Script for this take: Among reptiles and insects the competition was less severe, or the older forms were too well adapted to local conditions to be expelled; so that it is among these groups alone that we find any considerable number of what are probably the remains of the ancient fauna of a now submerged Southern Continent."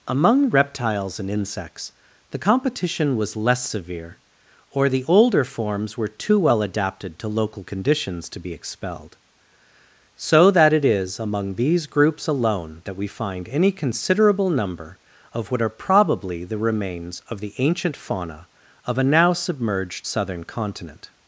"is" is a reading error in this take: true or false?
false